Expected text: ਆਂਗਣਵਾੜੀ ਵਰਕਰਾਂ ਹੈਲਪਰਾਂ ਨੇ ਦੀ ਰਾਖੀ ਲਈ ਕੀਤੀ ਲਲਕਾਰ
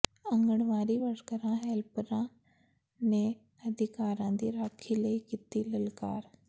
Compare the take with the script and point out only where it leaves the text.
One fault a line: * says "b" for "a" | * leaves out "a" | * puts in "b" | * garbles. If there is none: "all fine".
* puts in "ਅਧਿਕਾਰਾਂ"